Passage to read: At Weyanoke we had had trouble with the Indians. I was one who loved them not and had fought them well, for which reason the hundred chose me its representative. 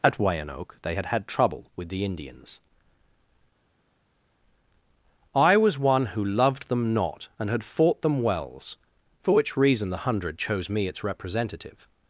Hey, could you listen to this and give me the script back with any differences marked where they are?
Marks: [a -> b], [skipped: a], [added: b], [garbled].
At Weyanoke [we -> they] had had trouble with the Indians. I was one who loved them not and had fought them [well, -> wells] for which reason the hundred chose me its representative.